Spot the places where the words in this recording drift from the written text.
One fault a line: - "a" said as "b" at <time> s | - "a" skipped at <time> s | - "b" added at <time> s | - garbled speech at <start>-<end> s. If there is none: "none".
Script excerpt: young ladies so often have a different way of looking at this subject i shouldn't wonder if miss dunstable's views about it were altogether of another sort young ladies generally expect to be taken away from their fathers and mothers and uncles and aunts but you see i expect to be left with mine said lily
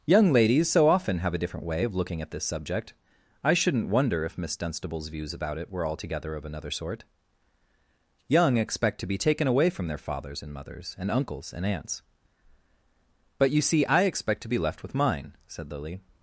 - "ladies generally" skipped at 8.6 s